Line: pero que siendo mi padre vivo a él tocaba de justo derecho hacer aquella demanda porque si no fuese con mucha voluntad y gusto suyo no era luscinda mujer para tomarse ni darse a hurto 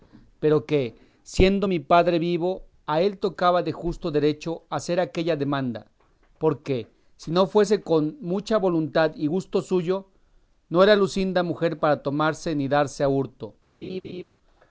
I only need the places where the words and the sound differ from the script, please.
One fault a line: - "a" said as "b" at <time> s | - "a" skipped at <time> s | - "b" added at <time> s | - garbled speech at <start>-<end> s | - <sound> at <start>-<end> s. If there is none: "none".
- laugh at 13.8-14.2 s